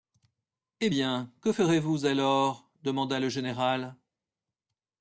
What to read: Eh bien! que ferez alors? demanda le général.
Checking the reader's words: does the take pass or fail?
fail